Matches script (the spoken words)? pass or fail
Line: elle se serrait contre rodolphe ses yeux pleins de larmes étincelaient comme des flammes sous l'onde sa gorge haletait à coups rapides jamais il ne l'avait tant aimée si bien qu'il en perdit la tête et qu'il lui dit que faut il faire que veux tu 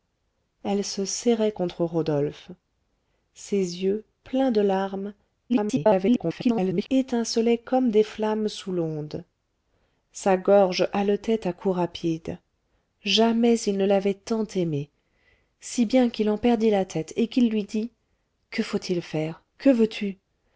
fail